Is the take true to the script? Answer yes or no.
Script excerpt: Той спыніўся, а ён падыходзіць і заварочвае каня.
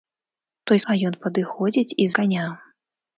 no